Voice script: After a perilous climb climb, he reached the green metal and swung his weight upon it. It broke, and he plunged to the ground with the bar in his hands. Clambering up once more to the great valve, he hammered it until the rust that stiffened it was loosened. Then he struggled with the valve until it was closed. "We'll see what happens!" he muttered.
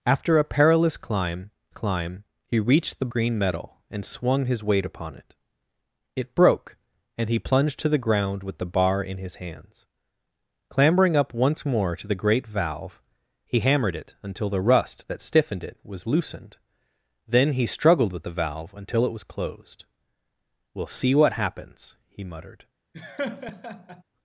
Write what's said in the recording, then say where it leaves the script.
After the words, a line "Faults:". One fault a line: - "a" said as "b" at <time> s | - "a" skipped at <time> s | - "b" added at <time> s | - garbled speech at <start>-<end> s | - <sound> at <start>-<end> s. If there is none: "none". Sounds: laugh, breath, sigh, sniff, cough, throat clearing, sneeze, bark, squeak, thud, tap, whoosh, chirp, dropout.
After a perilous climb climb, he reached the green metal and swung his weight upon it. It broke, and he plunged to the ground with the bar in his hands. Clambering up once more to the great valve, he hammered it until the rust that stiffened it was loosened. Then he struggled with the valve until it was closed. "We'll see what happens!" he muttered.
Faults:
- laugh at 22.9-24.0 s